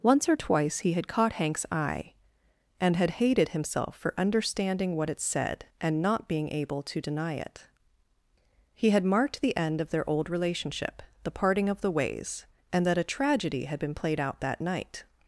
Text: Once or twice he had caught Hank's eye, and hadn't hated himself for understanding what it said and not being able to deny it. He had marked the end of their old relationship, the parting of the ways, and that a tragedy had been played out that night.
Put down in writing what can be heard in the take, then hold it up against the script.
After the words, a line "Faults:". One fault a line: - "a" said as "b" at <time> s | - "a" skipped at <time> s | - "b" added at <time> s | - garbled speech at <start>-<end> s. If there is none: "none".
Once or twice he had caught Hank's eye, and had hated himself for understanding what it said and not being able to deny it. He had marked the end of their old relationship, the parting of the ways, and that a tragedy had been played out that night.
Faults:
- "hadn't" said as "had" at 3.0 s